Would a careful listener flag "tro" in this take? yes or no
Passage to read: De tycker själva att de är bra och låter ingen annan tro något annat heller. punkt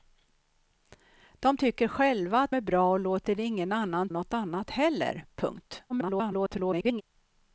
yes